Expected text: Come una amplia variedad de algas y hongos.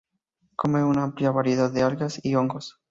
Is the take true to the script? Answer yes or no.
yes